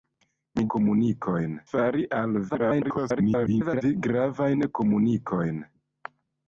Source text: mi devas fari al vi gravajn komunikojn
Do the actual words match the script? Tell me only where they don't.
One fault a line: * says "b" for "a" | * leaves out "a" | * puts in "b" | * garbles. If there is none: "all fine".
* says "komunikojn" for "devas"
* garbles